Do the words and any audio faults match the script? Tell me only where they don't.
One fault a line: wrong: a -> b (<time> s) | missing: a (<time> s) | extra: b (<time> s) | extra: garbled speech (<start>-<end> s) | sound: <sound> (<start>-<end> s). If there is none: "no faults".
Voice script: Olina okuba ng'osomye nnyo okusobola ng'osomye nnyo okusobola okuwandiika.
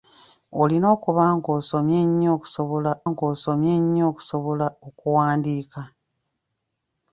no faults